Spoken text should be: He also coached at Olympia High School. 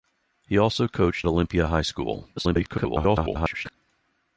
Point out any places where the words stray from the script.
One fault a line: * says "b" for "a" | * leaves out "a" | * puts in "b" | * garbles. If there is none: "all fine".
* leaves out "at"
* garbles